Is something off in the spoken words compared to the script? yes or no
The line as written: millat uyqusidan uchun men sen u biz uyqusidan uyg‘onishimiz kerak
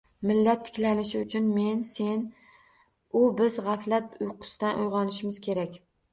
yes